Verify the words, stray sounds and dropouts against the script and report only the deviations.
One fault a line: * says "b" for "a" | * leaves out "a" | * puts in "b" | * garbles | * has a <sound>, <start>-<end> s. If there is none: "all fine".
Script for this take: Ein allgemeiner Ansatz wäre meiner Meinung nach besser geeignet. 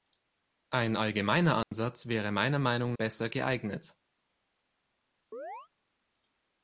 * has a dropout, 1.6-1.7 s
* leaves out "nach"
* has a chirp, 5.3-5.7 s